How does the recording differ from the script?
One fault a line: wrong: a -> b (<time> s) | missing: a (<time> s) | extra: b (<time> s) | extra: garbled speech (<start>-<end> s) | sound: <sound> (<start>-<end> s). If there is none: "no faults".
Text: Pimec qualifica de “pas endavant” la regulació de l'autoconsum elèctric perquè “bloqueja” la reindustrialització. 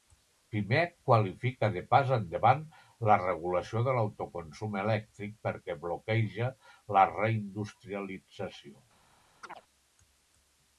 sound: chirp (9.4-9.6 s)